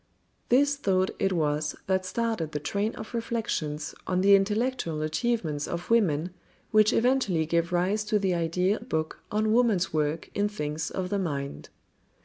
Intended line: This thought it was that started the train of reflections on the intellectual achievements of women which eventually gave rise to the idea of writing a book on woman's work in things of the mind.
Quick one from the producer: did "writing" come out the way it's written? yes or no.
no